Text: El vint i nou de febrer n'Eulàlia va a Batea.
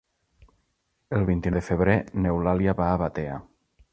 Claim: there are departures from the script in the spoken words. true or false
true